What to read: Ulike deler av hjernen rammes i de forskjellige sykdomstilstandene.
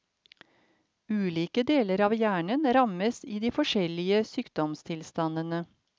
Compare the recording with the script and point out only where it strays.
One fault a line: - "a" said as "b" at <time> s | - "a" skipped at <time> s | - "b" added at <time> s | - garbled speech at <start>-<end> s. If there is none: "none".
none